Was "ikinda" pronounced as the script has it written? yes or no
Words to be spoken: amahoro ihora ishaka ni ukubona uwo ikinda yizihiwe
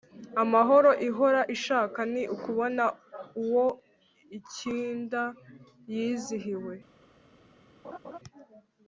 yes